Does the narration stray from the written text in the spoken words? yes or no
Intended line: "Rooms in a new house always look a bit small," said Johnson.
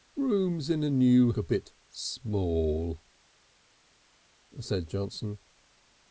yes